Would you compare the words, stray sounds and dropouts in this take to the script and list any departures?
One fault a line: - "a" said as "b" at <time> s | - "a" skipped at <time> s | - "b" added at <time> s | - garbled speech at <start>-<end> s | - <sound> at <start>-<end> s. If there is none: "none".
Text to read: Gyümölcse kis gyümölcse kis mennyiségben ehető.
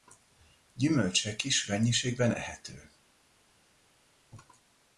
- "gyümölcse kis" skipped at 1.6 s